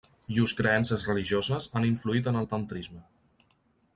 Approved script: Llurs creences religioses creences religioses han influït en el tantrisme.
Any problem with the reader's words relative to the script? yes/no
yes